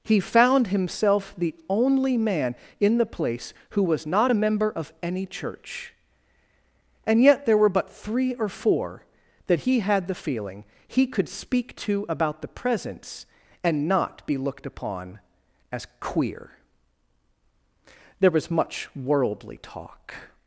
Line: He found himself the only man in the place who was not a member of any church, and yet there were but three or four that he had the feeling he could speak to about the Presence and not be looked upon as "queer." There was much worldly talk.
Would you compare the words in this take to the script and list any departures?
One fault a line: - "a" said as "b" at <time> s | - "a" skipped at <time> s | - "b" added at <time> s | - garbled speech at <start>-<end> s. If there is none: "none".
none